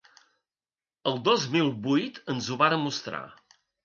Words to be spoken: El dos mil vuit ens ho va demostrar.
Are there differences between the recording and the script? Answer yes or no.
no